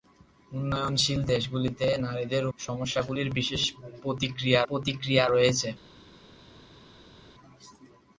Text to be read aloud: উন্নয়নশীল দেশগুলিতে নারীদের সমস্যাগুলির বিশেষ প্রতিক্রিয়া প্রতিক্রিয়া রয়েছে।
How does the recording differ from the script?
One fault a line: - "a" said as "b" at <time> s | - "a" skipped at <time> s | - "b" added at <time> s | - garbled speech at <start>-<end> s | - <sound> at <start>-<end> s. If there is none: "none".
none